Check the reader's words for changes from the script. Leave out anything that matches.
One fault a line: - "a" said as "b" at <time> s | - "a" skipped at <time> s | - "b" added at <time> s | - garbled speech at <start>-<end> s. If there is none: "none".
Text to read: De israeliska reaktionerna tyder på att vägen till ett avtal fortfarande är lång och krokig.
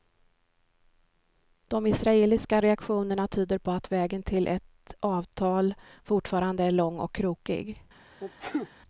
none